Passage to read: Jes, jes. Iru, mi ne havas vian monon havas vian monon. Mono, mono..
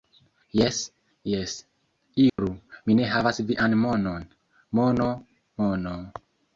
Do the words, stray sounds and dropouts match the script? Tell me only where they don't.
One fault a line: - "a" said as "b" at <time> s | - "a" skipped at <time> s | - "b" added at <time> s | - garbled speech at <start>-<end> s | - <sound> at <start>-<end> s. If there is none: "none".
- dropout at 2.3-2.4 s
- "havas vian monon" skipped at 4.3 s